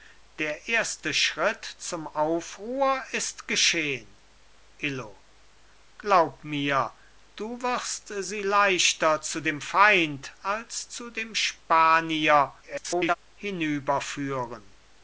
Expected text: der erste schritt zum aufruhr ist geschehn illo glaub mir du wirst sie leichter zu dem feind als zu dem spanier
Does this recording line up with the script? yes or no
no